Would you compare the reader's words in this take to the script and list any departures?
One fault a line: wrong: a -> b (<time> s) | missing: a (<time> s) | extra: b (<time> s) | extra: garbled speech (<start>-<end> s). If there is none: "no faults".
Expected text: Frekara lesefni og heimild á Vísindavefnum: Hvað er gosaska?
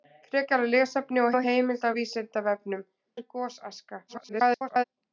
extra: og (1.3 s)
missing: Hvað (2.9 s)
extra: garbled speech (4.1-4.8 s)